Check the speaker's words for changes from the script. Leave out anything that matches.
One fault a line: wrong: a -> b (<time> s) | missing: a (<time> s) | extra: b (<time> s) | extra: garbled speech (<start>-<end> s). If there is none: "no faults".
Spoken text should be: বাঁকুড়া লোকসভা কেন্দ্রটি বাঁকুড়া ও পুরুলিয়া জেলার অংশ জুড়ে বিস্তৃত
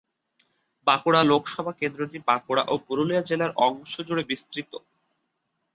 no faults